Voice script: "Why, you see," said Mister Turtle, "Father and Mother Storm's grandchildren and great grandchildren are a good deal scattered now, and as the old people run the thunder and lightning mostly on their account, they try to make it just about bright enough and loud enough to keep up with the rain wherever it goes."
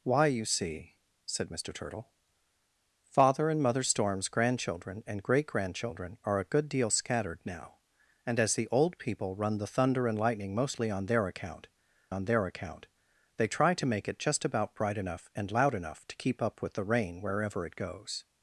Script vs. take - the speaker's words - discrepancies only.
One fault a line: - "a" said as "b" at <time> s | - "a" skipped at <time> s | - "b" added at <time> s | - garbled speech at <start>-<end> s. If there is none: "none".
- "on their account" added at 12.1 s